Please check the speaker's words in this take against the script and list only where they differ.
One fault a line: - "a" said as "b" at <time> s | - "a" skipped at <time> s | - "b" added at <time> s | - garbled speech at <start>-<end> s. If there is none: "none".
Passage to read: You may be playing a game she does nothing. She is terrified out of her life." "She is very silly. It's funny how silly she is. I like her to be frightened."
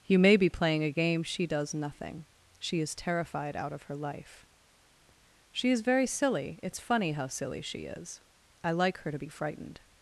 none